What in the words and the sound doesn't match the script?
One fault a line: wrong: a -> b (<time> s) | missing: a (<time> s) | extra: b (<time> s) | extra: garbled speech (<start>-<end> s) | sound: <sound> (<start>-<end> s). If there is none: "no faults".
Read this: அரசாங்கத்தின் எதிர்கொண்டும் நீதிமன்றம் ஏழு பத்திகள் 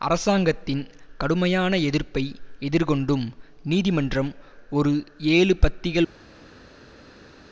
extra: கடுமையான எதிர்ப்பை (1.2 s)
extra: ஒரு (4.7 s)